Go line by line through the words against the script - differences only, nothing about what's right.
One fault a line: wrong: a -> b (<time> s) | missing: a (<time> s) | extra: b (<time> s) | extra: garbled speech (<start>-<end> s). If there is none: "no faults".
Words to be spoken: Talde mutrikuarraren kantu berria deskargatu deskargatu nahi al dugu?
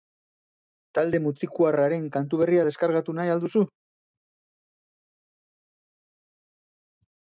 missing: deskargatu (3.2 s)
wrong: dugu -> duzu (3.4 s)